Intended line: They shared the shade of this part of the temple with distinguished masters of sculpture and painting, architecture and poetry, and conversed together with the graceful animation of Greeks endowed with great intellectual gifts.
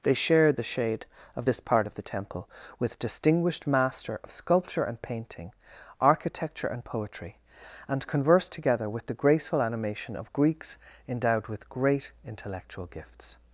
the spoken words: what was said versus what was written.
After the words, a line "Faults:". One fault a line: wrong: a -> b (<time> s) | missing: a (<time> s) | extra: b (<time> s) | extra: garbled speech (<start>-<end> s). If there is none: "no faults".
They shared the shade of this part of the temple with distinguished master of sculpture and painting, architecture and poetry, and conversed together with the graceful animation of Greeks endowed with great intellectual gifts.
Faults:
wrong: masters -> master (3.6 s)